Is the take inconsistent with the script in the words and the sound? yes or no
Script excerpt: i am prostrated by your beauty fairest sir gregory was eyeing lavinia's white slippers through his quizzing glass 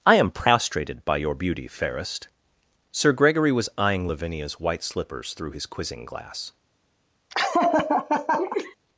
yes